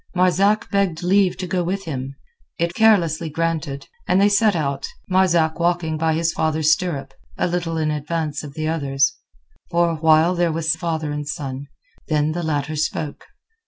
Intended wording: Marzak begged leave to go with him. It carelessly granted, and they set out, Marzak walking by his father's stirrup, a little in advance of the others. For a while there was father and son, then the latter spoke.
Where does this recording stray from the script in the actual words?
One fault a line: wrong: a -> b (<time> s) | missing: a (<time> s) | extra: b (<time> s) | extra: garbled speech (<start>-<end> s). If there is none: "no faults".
no faults